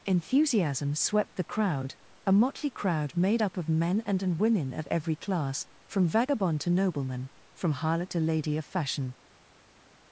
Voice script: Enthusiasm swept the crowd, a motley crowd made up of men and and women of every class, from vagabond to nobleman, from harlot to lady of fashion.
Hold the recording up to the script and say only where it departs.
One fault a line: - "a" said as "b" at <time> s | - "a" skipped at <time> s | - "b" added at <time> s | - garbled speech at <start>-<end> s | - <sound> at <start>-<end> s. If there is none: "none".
none